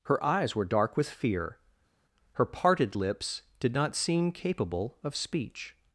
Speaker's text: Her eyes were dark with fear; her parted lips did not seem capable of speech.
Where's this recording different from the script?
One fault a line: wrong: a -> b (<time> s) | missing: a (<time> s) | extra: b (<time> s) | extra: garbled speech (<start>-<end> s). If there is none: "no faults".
no faults